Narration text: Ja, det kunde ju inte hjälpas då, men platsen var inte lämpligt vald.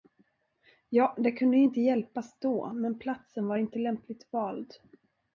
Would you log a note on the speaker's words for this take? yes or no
no